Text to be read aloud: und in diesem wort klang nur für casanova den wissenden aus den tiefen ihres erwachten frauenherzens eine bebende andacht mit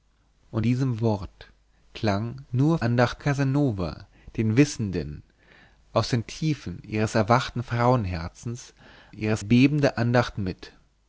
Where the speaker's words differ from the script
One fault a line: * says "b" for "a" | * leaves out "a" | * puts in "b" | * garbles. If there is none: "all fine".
* leaves out "in"
* says "andacht" for "für"
* says "ihres" for "eine"